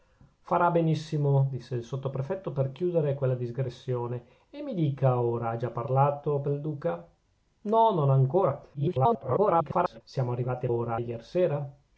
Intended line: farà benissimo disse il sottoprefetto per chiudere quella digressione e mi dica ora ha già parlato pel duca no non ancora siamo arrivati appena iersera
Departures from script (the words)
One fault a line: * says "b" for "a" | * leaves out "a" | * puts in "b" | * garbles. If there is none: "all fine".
* garbles
* says "ora" for "appena"